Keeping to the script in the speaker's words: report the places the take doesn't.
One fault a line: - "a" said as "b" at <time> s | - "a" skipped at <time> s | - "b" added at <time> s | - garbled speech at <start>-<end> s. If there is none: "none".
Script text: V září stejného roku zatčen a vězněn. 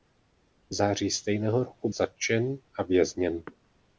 none